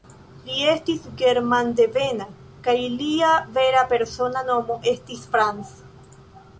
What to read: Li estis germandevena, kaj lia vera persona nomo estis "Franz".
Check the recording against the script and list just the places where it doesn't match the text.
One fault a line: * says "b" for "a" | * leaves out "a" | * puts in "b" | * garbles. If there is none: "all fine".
all fine